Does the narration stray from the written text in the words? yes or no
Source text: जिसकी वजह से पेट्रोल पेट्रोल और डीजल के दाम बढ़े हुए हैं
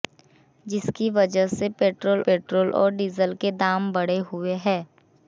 no